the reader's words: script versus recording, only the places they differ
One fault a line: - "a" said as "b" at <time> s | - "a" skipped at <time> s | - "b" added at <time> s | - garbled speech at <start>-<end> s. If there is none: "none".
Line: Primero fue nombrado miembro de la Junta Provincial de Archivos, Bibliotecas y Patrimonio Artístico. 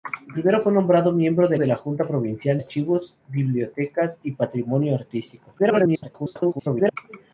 - "de" added at 1.6 s
- "de" skipped at 2.6 s
- garbled speech at 5.6-7.0 s